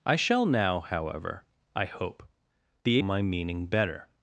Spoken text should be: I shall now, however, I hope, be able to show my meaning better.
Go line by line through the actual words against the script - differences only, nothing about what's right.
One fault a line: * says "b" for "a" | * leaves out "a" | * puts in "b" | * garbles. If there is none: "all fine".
* leaves out "able to show"